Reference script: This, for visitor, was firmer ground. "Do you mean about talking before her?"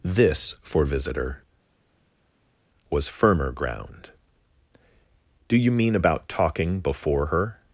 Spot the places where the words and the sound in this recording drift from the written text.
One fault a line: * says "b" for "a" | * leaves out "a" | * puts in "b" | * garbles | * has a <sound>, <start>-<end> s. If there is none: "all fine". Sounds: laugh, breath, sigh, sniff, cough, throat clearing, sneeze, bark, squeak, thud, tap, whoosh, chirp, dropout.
all fine